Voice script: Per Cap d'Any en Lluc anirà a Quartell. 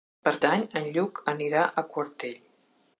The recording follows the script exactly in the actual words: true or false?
false